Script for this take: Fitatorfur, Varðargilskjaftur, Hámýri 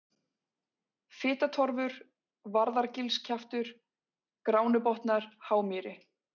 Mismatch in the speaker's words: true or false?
true